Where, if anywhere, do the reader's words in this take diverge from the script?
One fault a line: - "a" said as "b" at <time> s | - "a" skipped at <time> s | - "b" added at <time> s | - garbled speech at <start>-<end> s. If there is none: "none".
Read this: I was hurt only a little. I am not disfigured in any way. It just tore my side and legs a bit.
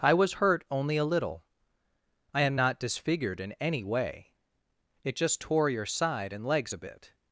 - "my" said as "your" at 5.7 s